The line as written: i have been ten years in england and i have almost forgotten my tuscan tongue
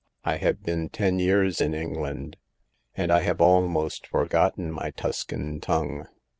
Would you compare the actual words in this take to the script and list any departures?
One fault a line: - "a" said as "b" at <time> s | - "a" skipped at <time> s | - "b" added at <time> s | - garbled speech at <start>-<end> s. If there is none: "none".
none